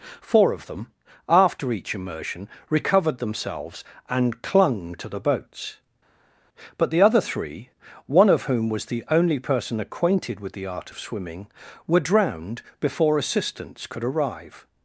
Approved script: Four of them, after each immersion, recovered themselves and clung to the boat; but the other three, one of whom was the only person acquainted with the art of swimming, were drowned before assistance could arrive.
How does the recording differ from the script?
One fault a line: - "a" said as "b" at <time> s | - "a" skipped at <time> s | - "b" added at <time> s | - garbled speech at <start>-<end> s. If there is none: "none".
- "boat" said as "boats" at 5.2 s